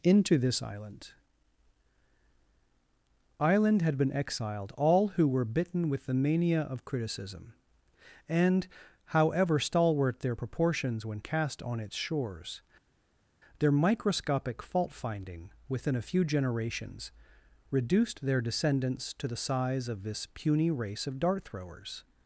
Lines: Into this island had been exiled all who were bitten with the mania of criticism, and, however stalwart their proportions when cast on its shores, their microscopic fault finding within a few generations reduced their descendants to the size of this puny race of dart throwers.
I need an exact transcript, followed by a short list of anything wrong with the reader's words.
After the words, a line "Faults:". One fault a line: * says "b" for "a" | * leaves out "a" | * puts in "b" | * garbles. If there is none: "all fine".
Into this island island had been exiled all who were bitten with the mania of criticism, and, however stalwart their proportions when cast on its shores, their microscopic fault finding within a few generations reduced their descendants to the size of this puny race of dart throwers.
Faults:
* puts in "island"